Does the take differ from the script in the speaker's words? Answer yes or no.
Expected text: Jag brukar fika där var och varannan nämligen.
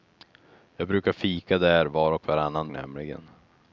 no